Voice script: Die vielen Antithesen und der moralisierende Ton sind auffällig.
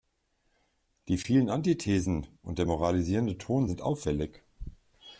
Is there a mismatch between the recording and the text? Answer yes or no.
no